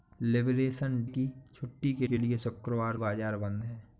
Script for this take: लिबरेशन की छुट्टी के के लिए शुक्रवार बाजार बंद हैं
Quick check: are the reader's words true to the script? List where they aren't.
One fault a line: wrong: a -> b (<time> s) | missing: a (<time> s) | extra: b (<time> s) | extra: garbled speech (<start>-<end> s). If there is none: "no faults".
no faults